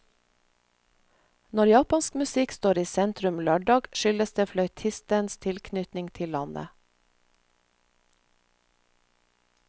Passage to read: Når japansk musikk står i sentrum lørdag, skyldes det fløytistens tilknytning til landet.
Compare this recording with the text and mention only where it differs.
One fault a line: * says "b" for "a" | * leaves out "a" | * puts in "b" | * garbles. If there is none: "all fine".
all fine